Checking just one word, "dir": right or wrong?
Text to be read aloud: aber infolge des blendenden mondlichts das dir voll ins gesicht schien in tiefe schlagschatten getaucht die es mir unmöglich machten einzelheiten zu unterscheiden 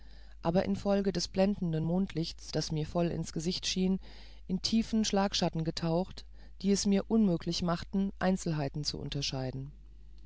wrong